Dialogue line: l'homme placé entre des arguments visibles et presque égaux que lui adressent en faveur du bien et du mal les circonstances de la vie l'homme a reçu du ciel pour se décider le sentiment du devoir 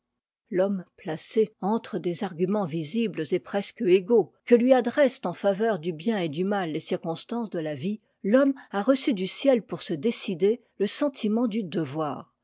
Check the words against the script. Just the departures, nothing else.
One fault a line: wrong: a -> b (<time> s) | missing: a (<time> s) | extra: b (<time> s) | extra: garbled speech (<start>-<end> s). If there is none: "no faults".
no faults